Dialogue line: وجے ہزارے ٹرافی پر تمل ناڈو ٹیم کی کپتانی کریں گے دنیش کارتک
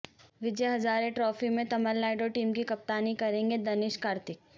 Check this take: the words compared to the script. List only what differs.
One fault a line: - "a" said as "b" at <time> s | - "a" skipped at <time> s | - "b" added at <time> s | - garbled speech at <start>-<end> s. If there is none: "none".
- "پر" said as "میں" at 1.5 s